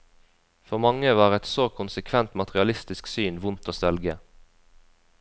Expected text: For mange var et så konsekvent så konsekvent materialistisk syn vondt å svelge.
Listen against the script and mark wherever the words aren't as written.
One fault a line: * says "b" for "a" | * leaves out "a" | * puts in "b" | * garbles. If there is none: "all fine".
* leaves out "så konsekvent"